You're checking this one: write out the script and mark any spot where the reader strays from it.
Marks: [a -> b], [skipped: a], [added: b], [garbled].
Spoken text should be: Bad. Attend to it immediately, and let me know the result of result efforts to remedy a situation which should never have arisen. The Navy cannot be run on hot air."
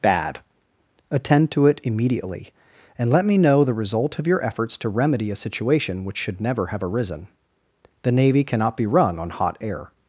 Bad. Attend to it immediately, and let me know the result of [result -> your] efforts to remedy a situation which should never have arisen. The Navy cannot be run on hot air."